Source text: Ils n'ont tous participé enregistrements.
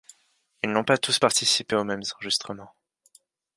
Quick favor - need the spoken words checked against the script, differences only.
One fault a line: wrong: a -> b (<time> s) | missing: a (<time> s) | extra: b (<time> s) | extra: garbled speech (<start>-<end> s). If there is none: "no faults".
extra: pas (0.8 s)
extra: aux mêmes (1.7 s)